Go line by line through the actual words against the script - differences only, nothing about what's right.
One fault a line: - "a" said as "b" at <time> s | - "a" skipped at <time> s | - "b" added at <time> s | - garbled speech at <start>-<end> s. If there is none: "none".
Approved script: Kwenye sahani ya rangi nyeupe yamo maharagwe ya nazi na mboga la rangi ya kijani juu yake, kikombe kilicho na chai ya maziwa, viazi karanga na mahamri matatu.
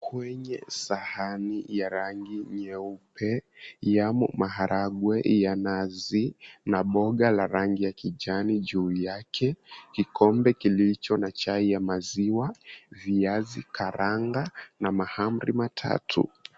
none